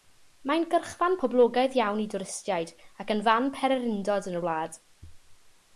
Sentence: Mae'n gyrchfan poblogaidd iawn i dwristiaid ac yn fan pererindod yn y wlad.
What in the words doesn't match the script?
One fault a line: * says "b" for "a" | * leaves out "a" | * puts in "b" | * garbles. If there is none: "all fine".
all fine